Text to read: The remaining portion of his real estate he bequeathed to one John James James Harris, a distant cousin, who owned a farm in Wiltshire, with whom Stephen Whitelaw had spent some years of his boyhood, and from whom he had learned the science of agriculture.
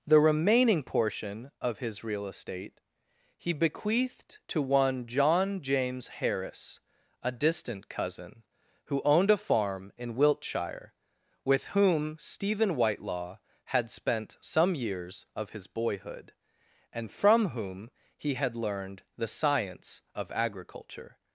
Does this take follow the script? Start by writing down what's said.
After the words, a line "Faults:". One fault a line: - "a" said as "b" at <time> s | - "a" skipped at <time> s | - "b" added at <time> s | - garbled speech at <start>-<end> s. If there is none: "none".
The remaining portion of his real estate he bequeathed to one John James Harris, a distant cousin, who owned a farm in Wiltshire, with whom Stephen Whitelaw had spent some years of his boyhood, and from whom he had learned the science of agriculture.
Faults:
- "James" skipped at 6.1 s